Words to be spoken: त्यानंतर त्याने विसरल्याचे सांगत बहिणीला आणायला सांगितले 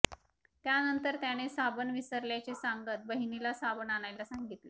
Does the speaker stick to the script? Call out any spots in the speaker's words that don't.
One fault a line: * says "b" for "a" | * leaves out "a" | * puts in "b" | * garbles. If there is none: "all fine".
* puts in "साबण"
* puts in "साबण"